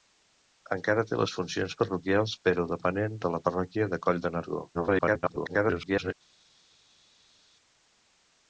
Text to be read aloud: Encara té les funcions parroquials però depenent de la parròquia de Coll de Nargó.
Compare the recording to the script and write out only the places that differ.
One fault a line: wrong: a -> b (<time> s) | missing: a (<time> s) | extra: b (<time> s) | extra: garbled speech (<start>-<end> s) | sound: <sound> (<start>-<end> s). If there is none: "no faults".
extra: garbled speech (4.7-6.1 s)